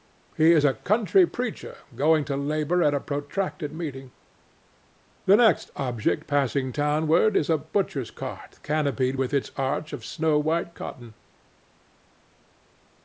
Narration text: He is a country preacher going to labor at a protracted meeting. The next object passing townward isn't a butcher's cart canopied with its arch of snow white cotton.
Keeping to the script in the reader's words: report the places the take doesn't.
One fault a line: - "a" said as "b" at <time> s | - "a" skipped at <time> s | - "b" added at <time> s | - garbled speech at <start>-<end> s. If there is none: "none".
- "isn't" said as "is" at 7.3 s